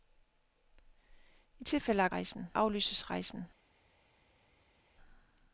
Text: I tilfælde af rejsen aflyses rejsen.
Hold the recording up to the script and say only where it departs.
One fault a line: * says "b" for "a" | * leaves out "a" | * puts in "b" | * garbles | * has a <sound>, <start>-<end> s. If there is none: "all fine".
all fine